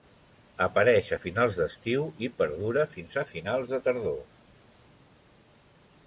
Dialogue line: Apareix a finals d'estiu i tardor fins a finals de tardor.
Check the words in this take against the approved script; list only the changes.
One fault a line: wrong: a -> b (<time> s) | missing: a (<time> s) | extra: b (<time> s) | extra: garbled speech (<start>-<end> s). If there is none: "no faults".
wrong: tardor -> perdura (2.4 s)